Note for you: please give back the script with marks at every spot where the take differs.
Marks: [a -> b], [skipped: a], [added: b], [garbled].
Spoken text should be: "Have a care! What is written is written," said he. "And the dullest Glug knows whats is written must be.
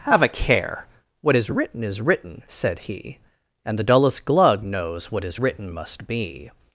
"Have a care! What is written is written," said he. "And the dullest Glug knows [whats -> what] is written must be.